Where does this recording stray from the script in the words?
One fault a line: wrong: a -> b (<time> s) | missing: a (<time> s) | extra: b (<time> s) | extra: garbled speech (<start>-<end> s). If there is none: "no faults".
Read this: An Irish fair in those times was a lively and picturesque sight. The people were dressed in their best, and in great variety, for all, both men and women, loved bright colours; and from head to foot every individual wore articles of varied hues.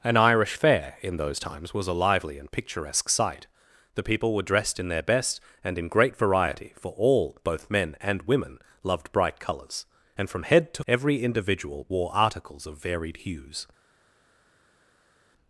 missing: foot (10.8 s)